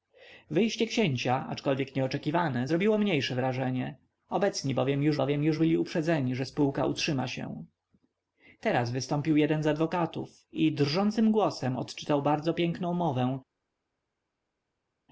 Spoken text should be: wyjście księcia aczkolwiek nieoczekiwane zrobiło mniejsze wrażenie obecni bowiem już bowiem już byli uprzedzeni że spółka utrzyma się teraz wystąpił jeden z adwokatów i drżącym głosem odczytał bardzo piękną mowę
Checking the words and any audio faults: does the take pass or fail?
pass